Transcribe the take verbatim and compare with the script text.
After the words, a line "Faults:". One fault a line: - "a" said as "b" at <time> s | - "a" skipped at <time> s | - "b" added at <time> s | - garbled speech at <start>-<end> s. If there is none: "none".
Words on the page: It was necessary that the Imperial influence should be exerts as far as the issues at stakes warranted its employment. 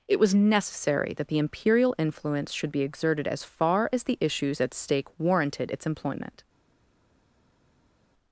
It was necessary that the Imperial influence should be exerted as far as the issues at stake warranted its employment.
Faults:
- "exerts" said as "exerted" at 2.8 s
- "stakes" said as "stake" at 4.7 s